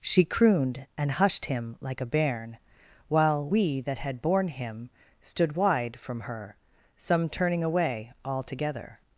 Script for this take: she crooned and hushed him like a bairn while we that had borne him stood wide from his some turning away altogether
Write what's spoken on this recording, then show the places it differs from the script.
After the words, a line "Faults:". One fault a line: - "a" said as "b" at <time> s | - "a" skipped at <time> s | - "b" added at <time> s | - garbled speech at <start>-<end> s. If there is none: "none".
she crooned and hushed him like a bairn while we that had borne him stood wide from her some turning away altogether
Faults:
- "his" said as "her" at 6.2 s